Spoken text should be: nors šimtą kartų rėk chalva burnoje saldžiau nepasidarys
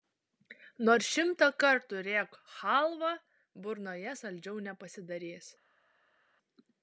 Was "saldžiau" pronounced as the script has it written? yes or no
yes